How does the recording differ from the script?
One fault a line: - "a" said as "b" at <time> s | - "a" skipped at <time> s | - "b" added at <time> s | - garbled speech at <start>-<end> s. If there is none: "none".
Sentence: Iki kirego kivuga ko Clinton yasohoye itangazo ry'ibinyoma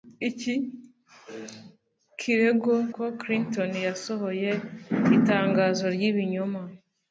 - "kivuga" skipped at 2.7 s